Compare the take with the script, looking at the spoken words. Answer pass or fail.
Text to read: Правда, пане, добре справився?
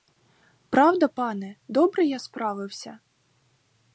fail